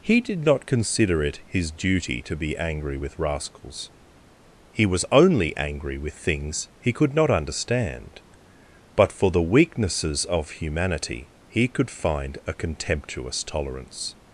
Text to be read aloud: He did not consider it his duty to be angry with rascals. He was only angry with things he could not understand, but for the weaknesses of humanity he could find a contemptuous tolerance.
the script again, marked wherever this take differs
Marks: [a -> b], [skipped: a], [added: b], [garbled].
He did not consider it his duty to be angry with rascals. He was only angry with things he could not understand, but for the weaknesses of humanity he could find a contemptuous tolerance.